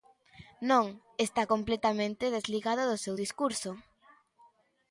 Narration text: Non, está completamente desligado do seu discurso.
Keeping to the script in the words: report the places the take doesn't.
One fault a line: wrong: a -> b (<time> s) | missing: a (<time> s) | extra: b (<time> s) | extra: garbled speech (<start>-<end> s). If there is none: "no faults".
no faults